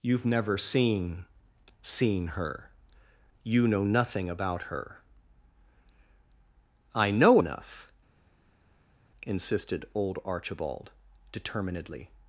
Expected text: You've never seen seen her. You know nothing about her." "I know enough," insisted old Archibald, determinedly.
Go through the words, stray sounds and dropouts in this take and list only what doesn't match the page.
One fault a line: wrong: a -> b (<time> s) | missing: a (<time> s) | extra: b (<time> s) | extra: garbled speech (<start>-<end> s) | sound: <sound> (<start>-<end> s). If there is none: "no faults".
no faults